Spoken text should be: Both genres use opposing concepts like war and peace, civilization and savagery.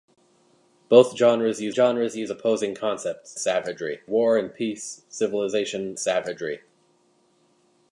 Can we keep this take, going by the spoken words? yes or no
no